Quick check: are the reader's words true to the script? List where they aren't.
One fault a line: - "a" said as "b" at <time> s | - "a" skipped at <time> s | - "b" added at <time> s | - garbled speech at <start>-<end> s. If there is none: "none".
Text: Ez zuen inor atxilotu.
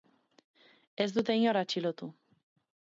- "zuen" said as "dute" at 1.2 s